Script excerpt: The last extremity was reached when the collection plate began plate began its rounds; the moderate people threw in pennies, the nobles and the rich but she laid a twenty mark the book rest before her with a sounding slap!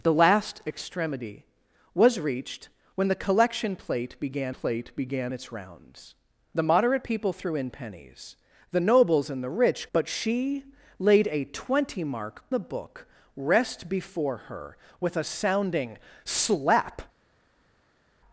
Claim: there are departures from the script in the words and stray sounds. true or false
false